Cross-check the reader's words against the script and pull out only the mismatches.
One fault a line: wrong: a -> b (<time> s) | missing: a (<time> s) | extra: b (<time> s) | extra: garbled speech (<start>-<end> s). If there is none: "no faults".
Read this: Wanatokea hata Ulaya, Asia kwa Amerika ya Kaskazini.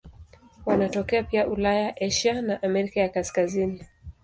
wrong: hata -> pia (1.2 s)
wrong: kwa -> na (2.4 s)